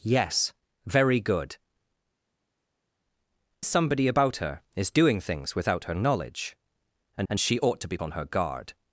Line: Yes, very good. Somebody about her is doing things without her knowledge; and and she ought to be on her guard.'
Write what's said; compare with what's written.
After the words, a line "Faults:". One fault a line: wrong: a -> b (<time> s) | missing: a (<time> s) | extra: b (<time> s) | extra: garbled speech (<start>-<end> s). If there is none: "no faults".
Yes, very good. Somebody about her is doing things without her knowledge; and and she ought to be on her guard.'
Faults:
no faults